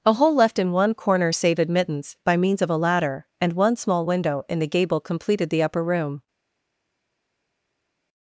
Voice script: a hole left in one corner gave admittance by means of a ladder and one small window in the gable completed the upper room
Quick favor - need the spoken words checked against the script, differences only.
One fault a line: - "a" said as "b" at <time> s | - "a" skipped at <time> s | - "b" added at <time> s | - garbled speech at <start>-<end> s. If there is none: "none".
- "gave" said as "save" at 1.3 s